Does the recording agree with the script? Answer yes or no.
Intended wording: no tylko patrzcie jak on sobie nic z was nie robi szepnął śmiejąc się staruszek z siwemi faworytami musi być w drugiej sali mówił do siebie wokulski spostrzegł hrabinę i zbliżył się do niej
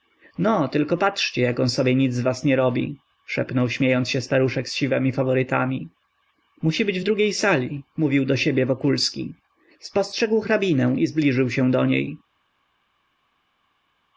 yes